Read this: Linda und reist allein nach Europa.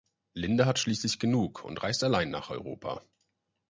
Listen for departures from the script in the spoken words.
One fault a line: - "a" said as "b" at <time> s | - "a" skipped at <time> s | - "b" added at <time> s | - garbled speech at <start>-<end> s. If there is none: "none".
- "hat schließlich genug" added at 0.7 s